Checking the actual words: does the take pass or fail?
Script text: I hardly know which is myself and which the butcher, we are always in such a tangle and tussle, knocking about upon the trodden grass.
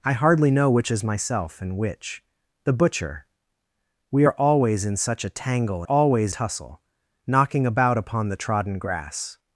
fail